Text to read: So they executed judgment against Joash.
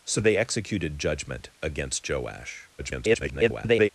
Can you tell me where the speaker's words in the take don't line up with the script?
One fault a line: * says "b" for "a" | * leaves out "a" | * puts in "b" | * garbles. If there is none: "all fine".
* garbles